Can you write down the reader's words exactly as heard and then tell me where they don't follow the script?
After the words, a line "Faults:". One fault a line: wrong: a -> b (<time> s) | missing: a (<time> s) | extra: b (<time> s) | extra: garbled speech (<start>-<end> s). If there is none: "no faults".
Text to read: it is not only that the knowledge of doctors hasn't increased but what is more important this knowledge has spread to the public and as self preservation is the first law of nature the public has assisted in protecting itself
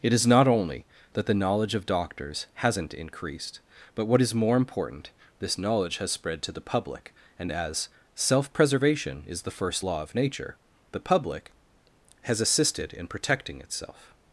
it is not only that the knowledge of doctors hasn't increased but what is more important this knowledge has spread to the public and as self preservation is the first law of nature the public has assisted in protecting itself
Faults:
no faults